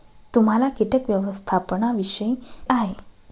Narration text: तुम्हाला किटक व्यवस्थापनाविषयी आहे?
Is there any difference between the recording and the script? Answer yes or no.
no